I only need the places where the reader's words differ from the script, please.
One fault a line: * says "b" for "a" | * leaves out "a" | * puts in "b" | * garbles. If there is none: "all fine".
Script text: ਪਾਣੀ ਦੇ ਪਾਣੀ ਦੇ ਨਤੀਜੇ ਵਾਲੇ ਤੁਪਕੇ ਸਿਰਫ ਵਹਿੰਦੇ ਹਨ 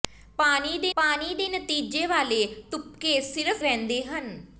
all fine